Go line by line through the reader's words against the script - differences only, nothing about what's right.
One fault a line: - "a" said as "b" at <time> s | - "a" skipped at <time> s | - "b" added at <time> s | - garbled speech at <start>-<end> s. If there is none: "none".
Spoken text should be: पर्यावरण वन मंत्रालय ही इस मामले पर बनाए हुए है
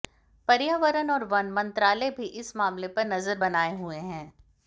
- "और" added at 1.1 s
- "ही" said as "भी" at 2.1 s
- "नजर" added at 3.1 s